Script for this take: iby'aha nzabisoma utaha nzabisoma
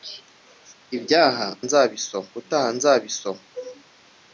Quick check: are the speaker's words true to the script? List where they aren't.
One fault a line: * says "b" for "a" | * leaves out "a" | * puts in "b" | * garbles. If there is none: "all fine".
all fine